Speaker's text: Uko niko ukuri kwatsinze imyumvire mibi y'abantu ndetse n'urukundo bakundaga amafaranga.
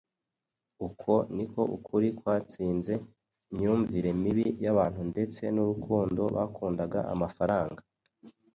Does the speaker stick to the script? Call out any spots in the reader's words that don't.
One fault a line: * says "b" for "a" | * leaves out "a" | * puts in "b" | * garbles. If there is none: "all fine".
all fine